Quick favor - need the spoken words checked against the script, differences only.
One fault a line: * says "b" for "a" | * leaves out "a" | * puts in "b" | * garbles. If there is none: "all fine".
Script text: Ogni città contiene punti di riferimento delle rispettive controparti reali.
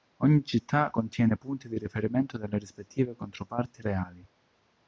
all fine